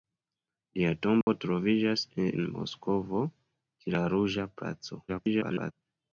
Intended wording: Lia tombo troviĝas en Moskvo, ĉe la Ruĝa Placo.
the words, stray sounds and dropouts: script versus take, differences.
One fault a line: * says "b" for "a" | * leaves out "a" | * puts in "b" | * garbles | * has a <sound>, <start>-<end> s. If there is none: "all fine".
* has a dropout, 1.2-1.3 s
* garbles